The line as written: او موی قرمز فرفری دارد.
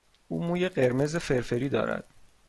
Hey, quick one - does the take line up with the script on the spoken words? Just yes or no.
yes